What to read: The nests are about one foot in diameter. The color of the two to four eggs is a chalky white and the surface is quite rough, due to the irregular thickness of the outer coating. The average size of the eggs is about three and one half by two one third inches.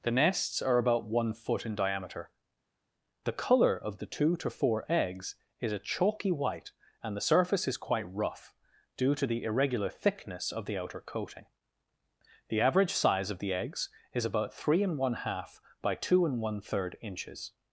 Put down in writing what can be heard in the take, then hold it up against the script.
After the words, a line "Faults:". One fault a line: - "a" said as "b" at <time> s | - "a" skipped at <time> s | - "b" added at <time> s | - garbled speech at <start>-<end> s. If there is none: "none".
The nests are about one foot in diameter. The color of the two to four eggs is a chalky white and the surface is quite rough, due to the irregular thickness of the outer coating. The average size of the eggs is about three and one half by two and one third inches.
Faults:
- "and" added at 16.2 s